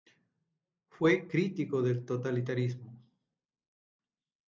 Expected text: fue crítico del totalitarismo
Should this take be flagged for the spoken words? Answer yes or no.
no